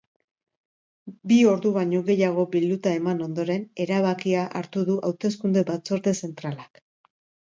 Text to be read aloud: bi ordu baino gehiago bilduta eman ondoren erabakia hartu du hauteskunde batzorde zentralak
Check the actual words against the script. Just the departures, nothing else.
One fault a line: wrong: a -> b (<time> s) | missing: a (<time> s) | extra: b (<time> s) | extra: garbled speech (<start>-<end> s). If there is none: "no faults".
no faults